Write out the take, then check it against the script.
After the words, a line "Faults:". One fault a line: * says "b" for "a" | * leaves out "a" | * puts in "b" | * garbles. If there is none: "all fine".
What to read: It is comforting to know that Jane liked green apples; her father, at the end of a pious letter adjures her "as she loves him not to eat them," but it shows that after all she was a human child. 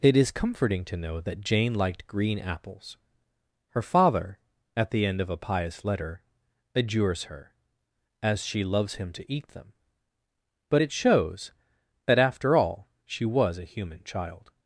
It is comforting to know that Jane liked green apples; her father, at the end of a pious letter adjures her "as she loves him to eat them," but it shows that after all she was a human child.
Faults:
* leaves out "not"